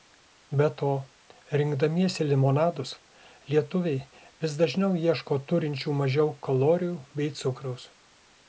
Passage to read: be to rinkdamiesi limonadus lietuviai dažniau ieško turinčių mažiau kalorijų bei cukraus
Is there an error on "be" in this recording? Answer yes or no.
no